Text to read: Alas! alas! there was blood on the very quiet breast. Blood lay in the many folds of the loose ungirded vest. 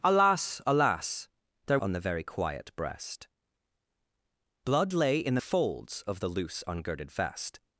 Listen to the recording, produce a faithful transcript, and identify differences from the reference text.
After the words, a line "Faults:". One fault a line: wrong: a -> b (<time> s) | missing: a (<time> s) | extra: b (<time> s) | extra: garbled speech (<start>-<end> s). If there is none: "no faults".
Alas! alas! there on the very quiet breast. Blood lay in the folds of the loose ungirded vest.
Faults:
missing: was blood (1.8 s)
missing: many (5.4 s)